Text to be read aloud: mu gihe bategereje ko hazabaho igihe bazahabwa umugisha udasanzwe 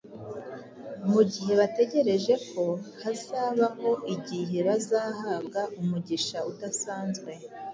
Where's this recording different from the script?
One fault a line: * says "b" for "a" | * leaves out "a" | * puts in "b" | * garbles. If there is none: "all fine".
all fine